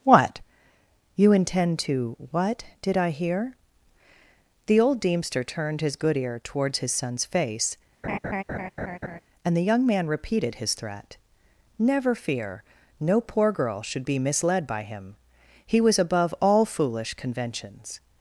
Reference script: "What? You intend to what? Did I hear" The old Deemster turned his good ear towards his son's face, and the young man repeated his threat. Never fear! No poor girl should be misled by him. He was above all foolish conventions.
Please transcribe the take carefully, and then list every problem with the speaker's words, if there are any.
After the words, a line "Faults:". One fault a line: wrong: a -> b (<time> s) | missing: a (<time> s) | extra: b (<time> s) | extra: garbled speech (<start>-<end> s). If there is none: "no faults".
"What? You intend to what? Did I hear" The old Deemster turned his good ear towards his son's face, and the young man repeated his threat. Never fear! No poor girl should be misled by him. He was above all foolish conventions.
Faults:
no faults